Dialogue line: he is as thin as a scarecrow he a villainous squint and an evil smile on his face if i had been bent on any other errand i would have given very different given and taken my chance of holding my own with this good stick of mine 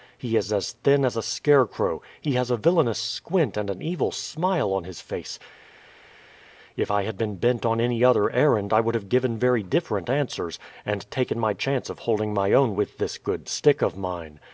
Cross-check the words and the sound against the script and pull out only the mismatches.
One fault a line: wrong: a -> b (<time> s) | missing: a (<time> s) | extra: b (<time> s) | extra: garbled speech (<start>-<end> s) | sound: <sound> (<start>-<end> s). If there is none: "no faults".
extra: has (2.3 s)
wrong: given -> answers (10.1 s)